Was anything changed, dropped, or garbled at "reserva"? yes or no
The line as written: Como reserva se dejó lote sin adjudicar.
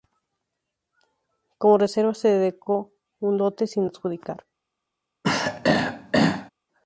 no